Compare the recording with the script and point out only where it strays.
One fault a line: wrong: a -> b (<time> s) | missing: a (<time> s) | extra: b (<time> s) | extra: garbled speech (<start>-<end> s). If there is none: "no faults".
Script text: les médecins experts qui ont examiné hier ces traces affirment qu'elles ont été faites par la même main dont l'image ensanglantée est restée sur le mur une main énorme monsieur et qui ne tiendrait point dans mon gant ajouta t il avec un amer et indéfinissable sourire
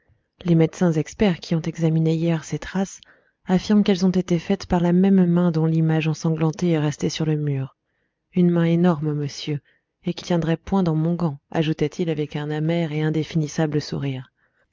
missing: ne (10.2 s)